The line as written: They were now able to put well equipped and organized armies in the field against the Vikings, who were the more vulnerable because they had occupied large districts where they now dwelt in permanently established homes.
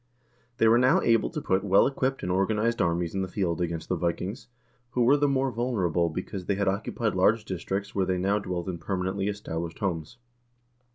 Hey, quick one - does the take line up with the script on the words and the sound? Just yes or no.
yes